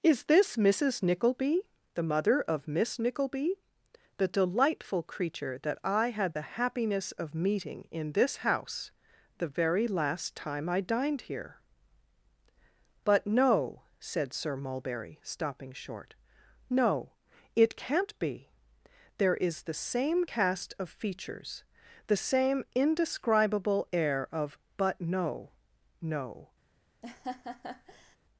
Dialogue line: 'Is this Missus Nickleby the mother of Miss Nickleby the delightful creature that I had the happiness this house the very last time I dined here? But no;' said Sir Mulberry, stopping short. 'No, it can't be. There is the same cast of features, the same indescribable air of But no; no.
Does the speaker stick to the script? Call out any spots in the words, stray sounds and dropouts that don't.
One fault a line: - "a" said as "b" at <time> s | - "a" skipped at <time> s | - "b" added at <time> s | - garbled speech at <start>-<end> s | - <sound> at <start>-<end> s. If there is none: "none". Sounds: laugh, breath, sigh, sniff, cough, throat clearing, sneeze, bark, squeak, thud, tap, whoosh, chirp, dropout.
- "of meeting in" added at 7.1 s
- laugh at 27.0-28.2 s